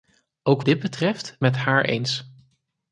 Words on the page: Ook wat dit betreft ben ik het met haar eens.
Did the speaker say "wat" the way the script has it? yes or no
no